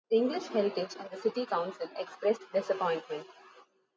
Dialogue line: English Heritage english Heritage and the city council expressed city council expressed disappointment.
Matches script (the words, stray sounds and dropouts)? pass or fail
fail